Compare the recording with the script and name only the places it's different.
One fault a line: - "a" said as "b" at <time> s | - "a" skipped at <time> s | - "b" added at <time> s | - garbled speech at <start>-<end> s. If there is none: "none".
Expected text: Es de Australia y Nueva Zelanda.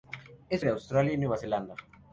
none